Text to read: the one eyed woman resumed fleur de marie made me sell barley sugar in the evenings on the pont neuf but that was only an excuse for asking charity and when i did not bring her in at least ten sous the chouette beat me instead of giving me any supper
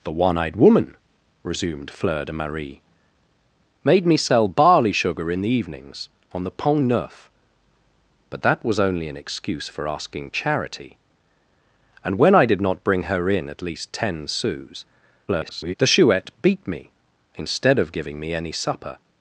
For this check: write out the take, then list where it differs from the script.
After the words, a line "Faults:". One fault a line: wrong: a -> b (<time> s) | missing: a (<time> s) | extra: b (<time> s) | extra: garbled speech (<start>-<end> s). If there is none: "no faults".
the one eyed woman resumed fleur de marie made me sell barley sugar in the evenings on the pont neuf but that was only an excuse for asking charity and when i did not bring her in at least ten sous [garbled] the chouette beat me instead of giving me any supper
Faults:
extra: garbled speech (15.3-15.7 s)